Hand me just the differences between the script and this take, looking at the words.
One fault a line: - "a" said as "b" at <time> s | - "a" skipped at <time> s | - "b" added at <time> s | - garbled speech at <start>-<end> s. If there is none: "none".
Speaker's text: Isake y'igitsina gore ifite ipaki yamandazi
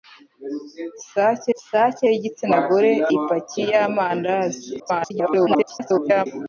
- "isake" added at 1.6 s
- "ifite" skipped at 2.9 s
- garbled speech at 4.8-6.3 s